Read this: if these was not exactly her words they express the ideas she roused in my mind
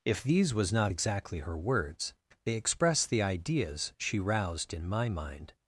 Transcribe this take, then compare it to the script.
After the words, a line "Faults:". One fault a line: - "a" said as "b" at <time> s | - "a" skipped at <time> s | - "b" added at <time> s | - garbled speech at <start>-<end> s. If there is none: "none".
if these was not exactly her words they express the ideas she roused in my mind
Faults:
none